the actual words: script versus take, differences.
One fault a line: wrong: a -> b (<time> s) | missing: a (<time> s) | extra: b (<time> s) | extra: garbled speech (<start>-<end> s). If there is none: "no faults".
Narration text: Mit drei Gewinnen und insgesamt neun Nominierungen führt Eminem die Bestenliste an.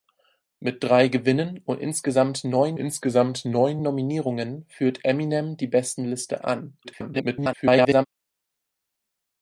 extra: insgesamt neun (2.8 s)
extra: garbled speech (6.8-8.1 s)